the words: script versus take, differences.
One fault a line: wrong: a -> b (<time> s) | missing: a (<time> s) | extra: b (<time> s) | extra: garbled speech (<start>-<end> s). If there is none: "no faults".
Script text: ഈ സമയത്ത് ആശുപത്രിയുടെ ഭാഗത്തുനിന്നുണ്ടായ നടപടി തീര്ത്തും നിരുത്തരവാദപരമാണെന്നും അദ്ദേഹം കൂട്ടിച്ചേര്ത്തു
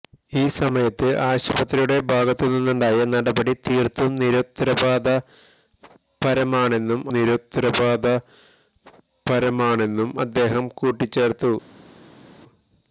extra: നിരുത്തരവാദപരമാണെന്നും (7.1 s)